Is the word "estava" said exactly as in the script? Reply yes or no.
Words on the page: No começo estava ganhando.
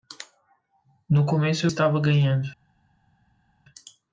yes